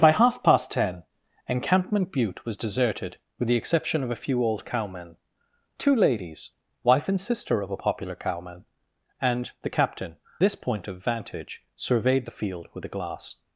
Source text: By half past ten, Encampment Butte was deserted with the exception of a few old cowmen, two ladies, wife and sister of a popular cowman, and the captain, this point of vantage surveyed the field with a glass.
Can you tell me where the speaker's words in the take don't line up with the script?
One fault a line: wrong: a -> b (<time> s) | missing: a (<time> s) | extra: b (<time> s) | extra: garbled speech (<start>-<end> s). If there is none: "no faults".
no faults